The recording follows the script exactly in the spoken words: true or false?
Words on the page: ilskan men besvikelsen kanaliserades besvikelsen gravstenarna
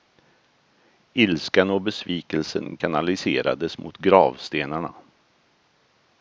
false